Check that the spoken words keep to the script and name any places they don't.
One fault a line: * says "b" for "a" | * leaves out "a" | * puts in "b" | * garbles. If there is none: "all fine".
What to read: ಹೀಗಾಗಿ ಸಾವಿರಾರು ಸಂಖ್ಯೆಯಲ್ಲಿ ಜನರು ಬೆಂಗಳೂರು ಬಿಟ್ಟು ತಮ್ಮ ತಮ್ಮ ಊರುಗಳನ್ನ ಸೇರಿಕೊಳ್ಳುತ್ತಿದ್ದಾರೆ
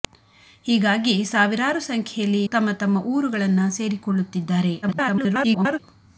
* leaves out "ಜನರು ಬೆಂಗಳೂರು ಬಿಟ್ಟು"
* garbles